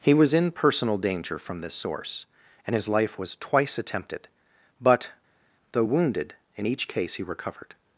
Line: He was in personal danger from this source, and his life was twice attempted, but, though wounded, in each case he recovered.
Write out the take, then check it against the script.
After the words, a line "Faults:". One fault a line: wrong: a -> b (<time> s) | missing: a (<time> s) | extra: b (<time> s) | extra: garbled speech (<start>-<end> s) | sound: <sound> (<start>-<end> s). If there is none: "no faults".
He was in personal danger from this source, and his life was twice attempted, but, though wounded, in each case he recovered.
Faults:
no faults